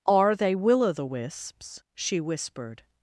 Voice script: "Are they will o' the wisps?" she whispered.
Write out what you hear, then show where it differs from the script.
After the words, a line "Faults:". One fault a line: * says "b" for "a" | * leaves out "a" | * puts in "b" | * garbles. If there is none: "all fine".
"Are they will o' the wisps?" she whispered.
Faults:
all fine